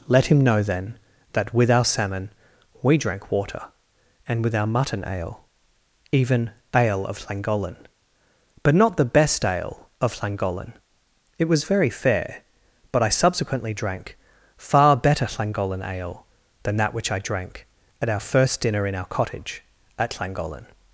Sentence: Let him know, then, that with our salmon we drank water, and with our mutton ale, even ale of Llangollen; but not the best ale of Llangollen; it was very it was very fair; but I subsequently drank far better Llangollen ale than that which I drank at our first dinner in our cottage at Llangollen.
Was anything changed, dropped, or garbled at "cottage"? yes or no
no